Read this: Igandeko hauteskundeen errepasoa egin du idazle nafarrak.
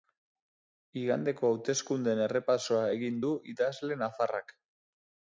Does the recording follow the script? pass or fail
pass